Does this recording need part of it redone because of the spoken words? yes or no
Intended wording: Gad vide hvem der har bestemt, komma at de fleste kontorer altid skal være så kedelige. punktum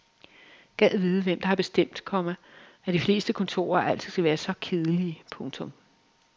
no